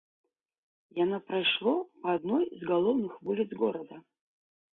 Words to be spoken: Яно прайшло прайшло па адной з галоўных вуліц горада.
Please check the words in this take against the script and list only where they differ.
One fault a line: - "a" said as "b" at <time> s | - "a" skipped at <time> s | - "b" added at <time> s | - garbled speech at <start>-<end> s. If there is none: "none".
- "прайшло" skipped at 1.7 s